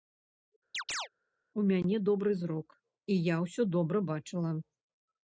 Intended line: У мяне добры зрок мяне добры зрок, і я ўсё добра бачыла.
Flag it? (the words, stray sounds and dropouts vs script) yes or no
yes